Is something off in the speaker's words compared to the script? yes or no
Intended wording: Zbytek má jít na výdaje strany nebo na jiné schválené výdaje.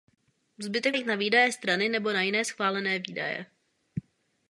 yes